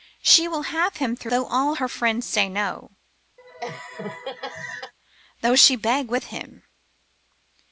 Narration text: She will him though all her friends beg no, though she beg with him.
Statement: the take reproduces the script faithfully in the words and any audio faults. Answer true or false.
false